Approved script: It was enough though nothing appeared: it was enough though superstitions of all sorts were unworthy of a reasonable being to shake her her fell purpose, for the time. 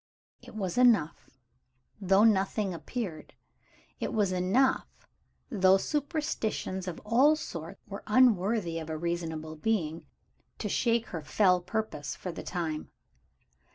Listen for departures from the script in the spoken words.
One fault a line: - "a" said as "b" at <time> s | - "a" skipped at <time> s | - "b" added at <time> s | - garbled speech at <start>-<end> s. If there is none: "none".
- "her" skipped at 11.2 s